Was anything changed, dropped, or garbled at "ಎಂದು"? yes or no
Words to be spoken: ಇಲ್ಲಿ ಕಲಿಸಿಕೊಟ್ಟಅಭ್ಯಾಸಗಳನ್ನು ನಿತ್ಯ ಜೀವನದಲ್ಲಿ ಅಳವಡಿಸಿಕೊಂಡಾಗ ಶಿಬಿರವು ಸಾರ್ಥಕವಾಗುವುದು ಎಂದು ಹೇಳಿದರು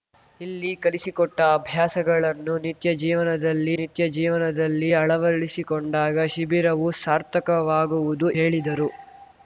yes